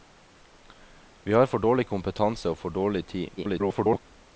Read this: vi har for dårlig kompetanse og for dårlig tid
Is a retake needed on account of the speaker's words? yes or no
yes